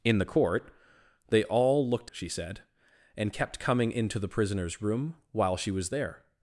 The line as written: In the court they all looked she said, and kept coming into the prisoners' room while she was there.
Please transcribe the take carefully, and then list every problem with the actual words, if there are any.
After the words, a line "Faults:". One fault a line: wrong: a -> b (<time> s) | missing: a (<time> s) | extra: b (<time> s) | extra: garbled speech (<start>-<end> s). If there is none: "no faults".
In the court they all looked she said, and kept coming into the prisoners' room while she was there.
Faults:
no faults